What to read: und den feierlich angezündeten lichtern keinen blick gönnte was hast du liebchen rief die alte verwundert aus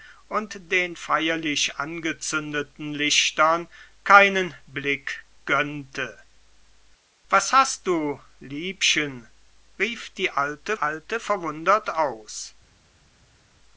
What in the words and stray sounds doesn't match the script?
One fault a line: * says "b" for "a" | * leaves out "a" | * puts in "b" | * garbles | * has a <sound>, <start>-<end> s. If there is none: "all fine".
* puts in "alte"